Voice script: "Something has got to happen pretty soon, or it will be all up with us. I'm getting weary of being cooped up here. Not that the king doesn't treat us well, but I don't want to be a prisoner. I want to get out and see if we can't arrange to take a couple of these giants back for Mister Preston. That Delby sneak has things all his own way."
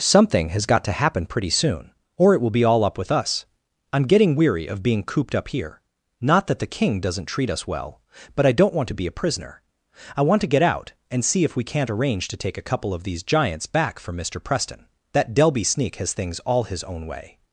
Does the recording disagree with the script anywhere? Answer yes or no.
no